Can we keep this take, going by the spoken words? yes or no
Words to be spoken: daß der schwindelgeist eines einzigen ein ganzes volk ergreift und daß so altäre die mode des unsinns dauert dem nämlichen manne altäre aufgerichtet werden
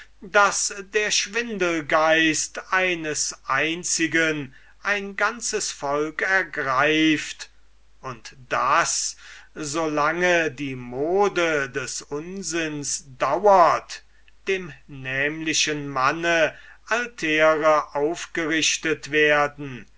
no